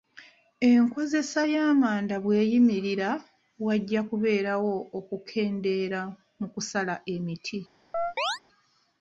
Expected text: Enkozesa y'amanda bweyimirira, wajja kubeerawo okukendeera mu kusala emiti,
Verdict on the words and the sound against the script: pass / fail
fail